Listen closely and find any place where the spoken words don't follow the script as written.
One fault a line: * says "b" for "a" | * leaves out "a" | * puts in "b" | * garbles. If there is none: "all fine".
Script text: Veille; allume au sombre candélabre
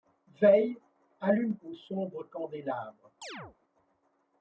all fine